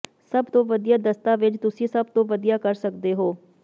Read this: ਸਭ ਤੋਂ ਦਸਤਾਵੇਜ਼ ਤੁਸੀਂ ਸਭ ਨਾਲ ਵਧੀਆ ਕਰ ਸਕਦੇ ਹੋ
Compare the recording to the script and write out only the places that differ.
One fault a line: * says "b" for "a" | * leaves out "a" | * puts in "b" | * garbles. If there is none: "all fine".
* puts in "ਵਧੀਆ"
* says "ਤੋਂ" for "ਨਾਲ"